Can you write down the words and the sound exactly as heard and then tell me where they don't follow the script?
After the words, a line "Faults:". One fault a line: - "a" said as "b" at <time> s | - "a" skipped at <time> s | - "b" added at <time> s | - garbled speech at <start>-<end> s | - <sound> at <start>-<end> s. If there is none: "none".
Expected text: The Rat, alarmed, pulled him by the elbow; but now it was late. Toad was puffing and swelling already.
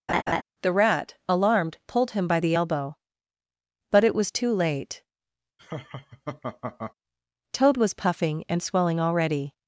The Rat, alarmed, pulled him by the elbow; but it was too late. Toad was puffing and swelling already.
Faults:
- laugh at 0.1-0.4 s
- "now" skipped at 4.0 s
- "too" added at 4.3 s
- laugh at 5.6-6.9 s